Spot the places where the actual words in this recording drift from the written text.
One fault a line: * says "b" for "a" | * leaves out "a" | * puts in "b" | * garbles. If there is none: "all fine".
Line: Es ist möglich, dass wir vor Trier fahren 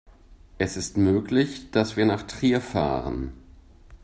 * says "nach" for "vor"